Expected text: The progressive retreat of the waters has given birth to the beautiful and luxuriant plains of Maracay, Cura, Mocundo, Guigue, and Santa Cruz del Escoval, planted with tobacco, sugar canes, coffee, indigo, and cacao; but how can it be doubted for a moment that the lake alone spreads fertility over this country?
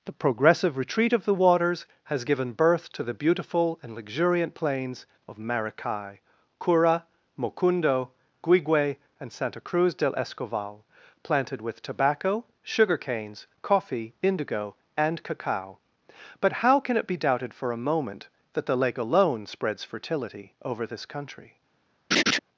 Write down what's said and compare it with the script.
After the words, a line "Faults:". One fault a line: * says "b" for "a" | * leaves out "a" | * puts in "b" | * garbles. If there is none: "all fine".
The progressive retreat of the waters has given birth to the beautiful and luxuriant plains of Maracay, Cura, Mocundo, Guigue, and Santa Cruz del Escoval, planted with tobacco, sugar canes, coffee, indigo, and cacao; but how can it be doubted for a moment that the lake alone spreads fertility over this country?
Faults:
all fine